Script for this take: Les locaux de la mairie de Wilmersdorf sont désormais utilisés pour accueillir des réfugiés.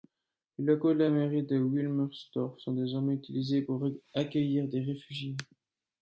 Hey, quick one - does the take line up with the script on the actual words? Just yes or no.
yes